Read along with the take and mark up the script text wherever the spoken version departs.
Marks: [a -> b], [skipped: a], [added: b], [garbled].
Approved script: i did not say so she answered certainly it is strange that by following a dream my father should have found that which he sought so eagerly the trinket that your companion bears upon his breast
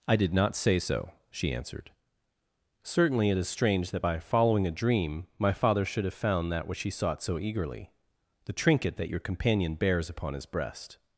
i did not say so she answered certainly it is strange that by following a dream my father should have found that which he sought so eagerly the trinket that your companion bears upon his breast